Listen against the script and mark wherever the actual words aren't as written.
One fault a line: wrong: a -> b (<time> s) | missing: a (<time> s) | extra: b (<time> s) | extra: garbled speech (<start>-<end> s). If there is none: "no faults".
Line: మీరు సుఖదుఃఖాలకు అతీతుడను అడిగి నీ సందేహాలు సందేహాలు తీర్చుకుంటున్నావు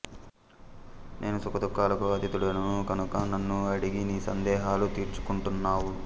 wrong: మీరు -> నేను (1.2 s)
extra: కనుక నన్ను (2.9 s)
missing: సందేహాలు (4.9 s)